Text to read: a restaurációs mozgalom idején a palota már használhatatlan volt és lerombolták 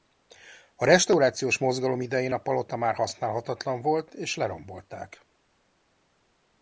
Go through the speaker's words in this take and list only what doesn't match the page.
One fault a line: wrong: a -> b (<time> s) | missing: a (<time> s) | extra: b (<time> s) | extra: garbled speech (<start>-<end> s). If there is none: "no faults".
no faults